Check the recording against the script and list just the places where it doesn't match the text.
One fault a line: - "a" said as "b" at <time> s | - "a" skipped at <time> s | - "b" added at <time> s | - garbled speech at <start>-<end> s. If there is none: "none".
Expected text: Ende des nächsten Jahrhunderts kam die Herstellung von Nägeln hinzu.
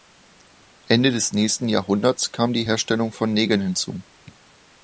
none